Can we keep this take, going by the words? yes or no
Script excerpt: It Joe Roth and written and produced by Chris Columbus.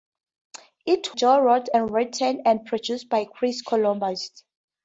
yes